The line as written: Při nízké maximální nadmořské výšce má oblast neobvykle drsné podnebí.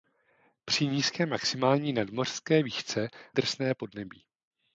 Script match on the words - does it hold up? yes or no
no